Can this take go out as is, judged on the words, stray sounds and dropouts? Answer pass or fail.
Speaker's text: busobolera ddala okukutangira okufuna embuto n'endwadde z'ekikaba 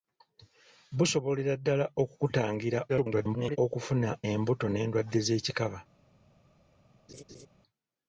fail